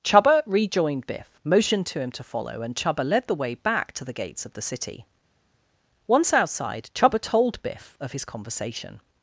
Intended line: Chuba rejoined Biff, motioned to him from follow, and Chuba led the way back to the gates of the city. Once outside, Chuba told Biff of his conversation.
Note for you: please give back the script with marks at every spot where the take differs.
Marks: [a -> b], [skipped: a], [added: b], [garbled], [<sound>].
Chuba rejoined Biff, motioned to him [from -> to] follow, and Chuba led the way back to the gates of the city. Once outside, Chuba told Biff of his conversation.